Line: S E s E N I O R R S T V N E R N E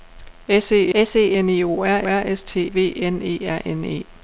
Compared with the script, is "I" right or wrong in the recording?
right